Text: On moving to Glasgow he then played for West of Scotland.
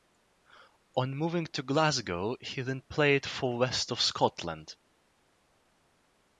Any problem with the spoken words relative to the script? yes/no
no